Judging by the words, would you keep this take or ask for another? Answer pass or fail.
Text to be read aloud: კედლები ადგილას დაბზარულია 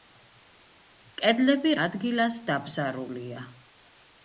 pass